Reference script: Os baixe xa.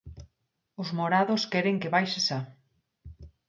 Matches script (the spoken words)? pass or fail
fail